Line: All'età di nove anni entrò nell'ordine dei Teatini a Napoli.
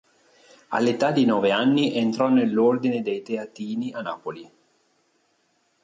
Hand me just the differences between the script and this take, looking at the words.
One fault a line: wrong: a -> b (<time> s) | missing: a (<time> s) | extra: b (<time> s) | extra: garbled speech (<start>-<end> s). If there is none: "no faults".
no faults